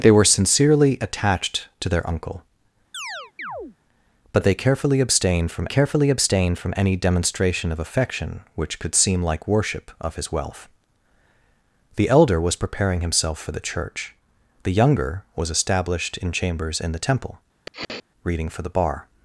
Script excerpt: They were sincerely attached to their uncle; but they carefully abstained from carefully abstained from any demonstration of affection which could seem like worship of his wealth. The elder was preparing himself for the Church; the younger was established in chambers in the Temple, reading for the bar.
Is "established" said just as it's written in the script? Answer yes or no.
yes